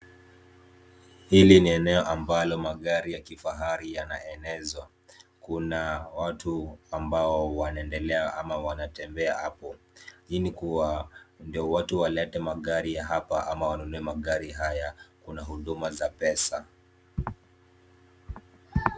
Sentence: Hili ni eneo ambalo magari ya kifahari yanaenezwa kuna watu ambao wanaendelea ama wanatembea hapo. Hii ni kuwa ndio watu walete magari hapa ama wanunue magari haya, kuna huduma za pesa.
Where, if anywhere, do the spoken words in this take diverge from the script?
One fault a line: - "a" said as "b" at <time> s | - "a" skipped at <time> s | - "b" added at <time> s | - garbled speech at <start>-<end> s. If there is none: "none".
none